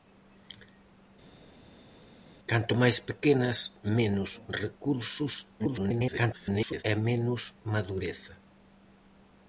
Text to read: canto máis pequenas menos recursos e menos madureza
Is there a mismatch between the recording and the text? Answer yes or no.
yes